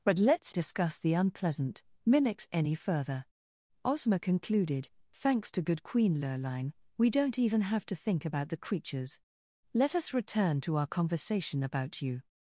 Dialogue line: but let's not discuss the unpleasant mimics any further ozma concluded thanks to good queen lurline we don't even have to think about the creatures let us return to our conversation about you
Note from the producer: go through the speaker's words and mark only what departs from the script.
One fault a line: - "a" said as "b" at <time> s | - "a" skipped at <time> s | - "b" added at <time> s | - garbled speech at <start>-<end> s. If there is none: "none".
- "not" skipped at 0.6 s